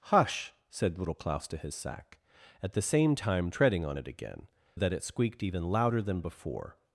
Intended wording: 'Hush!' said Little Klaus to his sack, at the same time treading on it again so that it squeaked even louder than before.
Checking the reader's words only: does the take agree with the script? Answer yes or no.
no